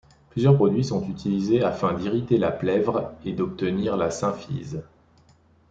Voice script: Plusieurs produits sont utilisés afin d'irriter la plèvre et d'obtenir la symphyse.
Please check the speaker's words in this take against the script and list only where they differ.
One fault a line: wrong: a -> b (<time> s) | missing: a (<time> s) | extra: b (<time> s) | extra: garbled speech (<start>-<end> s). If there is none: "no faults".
no faults